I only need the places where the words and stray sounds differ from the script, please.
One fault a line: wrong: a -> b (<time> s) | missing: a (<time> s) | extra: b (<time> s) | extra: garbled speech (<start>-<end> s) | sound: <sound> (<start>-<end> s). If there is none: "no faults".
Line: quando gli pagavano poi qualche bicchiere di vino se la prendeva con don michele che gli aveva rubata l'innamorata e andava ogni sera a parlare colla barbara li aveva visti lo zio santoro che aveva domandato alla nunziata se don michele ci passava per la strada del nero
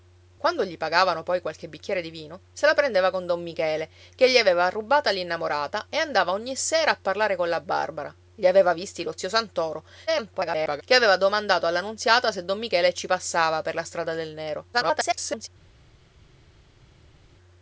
extra: garbled speech (10.1-10.8 s)
extra: garbled speech (14.7-15.5 s)